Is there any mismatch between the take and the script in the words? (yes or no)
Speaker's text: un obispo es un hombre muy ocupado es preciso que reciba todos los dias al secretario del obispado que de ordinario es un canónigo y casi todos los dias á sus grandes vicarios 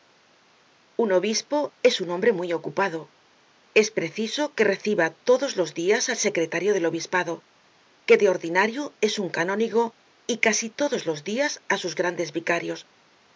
no